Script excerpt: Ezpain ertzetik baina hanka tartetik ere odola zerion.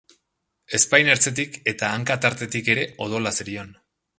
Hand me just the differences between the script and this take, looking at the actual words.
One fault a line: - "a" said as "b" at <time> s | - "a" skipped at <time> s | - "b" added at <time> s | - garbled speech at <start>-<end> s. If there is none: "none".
- "baina" said as "eta" at 1.7 s